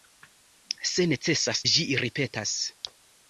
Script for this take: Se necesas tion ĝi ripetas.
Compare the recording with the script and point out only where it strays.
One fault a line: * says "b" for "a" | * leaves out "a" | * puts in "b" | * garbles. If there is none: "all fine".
* leaves out "tion"